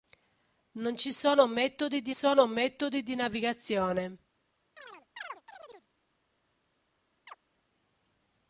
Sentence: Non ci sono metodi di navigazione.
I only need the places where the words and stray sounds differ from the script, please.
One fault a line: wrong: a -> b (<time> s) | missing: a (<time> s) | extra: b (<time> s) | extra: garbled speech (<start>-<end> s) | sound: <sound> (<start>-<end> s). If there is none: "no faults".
extra: sono metodi di (2.1 s)
sound: chirp (4.8-5.9 s)
sound: chirp (7.3-7.4 s)